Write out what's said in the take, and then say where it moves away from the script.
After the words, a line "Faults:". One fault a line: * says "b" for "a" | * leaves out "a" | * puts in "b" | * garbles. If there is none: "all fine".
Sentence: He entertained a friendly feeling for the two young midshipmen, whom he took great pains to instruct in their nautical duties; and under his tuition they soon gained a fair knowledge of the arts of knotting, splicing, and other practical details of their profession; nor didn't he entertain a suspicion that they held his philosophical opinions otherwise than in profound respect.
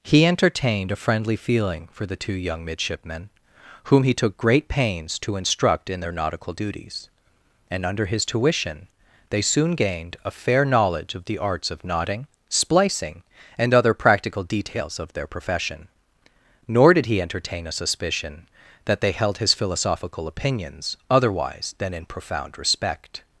He entertained a friendly feeling for the two young midshipmen, whom he took great pains to instruct in their nautical duties; and under his tuition they soon gained a fair knowledge of the arts of knotting, splicing, and other practical details of their profession; nor did he entertain a suspicion that they held his philosophical opinions otherwise than in profound respect.
Faults:
* says "did" for "didn't"